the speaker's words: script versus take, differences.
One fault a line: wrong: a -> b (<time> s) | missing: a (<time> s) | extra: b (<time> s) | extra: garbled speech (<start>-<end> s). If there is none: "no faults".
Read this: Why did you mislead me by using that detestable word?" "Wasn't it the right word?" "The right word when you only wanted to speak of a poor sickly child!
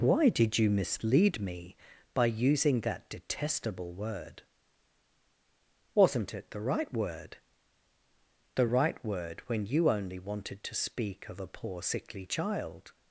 no faults